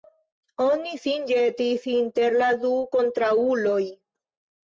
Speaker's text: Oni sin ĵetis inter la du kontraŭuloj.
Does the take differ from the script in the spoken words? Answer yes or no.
no